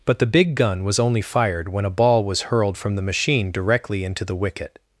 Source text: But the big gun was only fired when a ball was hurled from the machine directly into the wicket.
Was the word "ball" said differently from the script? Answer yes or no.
no